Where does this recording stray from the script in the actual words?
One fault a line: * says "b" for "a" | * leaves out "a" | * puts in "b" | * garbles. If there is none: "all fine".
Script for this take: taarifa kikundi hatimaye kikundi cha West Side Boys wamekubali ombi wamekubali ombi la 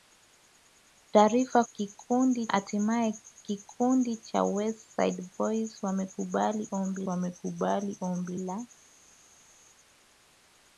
all fine